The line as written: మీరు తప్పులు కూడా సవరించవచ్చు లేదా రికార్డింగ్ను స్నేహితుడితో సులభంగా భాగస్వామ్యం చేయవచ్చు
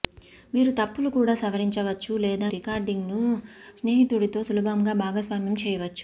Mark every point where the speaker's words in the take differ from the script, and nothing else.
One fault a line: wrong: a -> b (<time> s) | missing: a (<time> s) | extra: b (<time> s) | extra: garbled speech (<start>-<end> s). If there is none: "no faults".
no faults